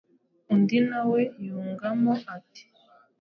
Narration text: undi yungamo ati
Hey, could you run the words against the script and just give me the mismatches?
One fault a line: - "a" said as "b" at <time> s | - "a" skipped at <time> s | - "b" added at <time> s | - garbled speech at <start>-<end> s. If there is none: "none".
- "nawe" added at 0.9 s